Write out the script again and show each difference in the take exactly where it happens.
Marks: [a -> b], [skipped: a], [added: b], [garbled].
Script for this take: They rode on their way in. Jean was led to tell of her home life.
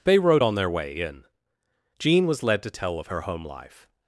They rode on their way in. Jean was led to tell of her home life.